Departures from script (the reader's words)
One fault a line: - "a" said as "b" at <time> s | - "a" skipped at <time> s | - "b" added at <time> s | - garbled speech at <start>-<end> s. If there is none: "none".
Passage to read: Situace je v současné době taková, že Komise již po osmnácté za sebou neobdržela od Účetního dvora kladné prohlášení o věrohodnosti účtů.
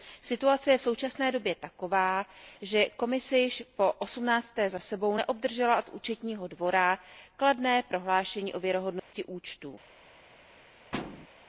none